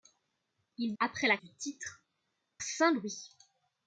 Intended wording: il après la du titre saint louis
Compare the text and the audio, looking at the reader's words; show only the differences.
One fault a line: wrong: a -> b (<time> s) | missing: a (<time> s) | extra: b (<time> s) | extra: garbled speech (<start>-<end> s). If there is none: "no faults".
no faults